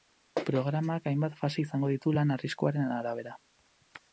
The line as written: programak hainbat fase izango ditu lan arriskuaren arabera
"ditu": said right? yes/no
yes